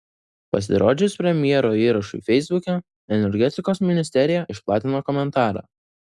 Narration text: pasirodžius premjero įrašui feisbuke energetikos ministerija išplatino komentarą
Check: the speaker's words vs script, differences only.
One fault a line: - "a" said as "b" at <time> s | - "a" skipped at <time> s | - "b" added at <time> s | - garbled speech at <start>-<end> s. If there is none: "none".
none